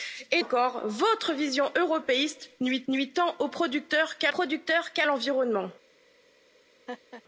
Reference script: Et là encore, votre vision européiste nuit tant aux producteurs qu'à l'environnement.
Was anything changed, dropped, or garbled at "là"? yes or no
yes